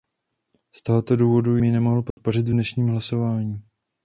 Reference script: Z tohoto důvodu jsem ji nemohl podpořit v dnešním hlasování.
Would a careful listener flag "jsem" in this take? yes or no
yes